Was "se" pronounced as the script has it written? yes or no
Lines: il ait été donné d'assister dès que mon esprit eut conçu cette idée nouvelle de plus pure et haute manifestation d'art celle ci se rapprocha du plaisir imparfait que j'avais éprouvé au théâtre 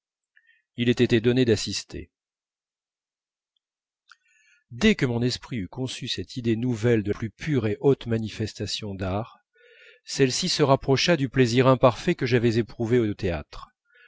yes